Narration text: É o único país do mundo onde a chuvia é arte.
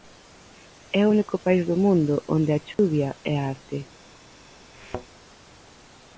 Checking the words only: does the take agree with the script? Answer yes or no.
yes